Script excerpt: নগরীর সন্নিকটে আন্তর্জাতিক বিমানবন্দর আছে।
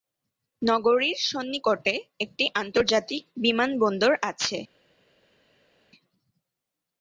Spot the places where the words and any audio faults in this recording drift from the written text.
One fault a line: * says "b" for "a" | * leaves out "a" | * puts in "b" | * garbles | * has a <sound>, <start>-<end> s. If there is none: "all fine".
* puts in "একটি"